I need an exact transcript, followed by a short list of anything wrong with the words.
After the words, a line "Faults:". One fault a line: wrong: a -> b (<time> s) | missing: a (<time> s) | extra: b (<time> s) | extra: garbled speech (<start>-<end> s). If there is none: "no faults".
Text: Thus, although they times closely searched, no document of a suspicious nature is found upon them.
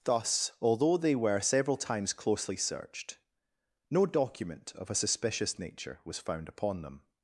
Thus, although they were several times closely searched, no document of a suspicious nature was found upon them.
Faults:
extra: were several (1.1 s)
wrong: is -> was (6.1 s)